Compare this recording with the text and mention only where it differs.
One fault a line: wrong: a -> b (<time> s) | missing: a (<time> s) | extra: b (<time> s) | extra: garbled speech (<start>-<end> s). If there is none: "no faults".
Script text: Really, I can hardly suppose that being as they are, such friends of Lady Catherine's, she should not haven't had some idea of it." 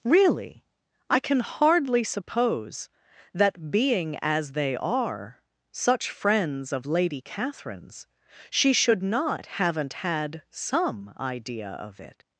no faults